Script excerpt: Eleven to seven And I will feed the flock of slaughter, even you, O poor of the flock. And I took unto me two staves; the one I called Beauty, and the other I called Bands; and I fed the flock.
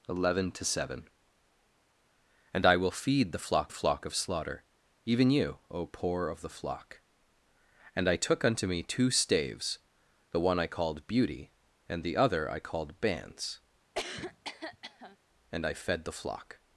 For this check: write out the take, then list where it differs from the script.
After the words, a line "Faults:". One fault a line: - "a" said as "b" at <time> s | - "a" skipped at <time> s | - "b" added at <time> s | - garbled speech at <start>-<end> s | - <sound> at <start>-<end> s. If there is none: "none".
Eleven to seven And I will feed the flock flock of slaughter, even you, O poor of the flock. And I took unto me two staves; the one I called Beauty, and the other I called Bands; and I fed the flock.
Faults:
- "flock" added at 3.7 s
- cough at 13.9-15.2 s